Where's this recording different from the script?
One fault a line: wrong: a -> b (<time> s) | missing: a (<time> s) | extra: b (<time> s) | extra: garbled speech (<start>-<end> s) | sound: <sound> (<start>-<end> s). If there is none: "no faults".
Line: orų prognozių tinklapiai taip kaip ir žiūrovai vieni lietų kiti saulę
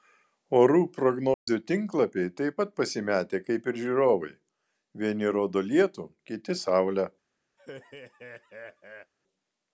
sound: dropout (1.3-1.5 s)
extra: pat pasimetę (2.6 s)
extra: rodo (5.4 s)
sound: laugh (7.6-9.1 s)